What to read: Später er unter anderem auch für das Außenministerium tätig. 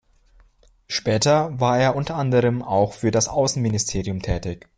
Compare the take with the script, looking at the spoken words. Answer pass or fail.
fail